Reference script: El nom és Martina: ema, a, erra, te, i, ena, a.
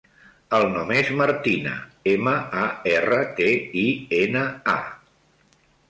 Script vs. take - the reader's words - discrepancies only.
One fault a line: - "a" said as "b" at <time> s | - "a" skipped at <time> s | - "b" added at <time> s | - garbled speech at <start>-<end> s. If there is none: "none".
none